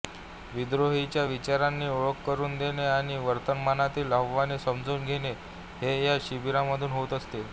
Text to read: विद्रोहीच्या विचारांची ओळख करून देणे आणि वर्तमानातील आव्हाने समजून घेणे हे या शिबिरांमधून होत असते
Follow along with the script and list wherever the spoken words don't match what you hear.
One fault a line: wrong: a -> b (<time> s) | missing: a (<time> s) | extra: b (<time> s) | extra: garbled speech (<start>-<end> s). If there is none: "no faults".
no faults